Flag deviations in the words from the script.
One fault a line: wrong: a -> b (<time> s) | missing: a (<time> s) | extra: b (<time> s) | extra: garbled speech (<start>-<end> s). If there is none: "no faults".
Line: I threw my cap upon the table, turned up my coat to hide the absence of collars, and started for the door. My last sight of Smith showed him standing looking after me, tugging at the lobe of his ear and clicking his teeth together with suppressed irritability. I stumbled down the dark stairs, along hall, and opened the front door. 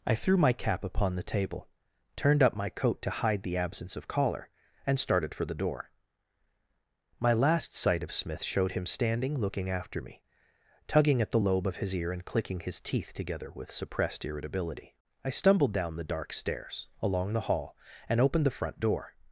wrong: collars -> collar (4.1 s)
extra: the (17.3 s)